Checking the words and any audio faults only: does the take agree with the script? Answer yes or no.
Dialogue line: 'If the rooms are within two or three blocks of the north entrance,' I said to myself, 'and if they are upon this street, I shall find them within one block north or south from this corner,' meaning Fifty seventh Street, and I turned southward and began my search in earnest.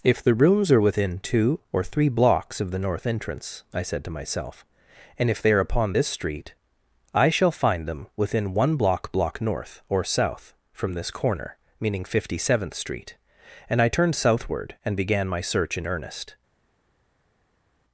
no